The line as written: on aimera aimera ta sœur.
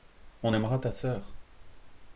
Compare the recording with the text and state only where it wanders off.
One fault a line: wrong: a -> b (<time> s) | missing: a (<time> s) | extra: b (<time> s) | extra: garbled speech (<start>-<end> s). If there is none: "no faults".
missing: aimera (0.8 s)